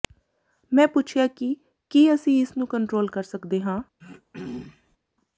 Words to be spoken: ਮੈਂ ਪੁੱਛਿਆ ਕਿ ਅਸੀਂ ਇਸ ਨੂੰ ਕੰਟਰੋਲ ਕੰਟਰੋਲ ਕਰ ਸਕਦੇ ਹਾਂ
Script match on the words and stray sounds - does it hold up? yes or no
no